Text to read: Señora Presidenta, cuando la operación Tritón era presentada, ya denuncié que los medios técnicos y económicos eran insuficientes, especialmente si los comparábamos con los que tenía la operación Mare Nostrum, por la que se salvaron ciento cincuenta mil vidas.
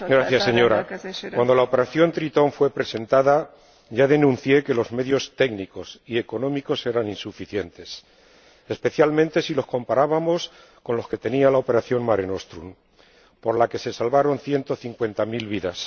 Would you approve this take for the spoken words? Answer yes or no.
no